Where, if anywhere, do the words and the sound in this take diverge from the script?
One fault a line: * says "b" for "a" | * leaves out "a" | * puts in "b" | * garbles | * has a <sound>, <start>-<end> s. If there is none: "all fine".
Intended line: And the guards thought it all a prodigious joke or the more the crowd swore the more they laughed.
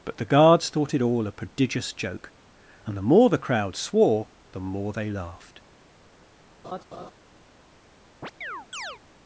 * says "But" for "And"
* says "and" for "or"
* has a laugh, 6.6-7.1 s
* has a chirp, 8.2-9.0 s